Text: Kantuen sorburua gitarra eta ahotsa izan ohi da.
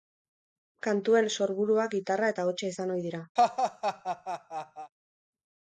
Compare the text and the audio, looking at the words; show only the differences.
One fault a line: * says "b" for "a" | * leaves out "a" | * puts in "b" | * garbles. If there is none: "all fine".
* says "dira" for "da"